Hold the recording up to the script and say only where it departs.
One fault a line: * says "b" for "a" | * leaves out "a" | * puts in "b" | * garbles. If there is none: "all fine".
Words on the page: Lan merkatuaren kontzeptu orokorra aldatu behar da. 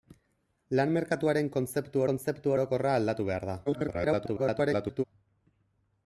* puts in "kontzeptu"
* garbles